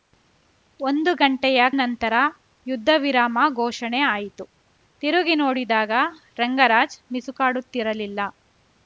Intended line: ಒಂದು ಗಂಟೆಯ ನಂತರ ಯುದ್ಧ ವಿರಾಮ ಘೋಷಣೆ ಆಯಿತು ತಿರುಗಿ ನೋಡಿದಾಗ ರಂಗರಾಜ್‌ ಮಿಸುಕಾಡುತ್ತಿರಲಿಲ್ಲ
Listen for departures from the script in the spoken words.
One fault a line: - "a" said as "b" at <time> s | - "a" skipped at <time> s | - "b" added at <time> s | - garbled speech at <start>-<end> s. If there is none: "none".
none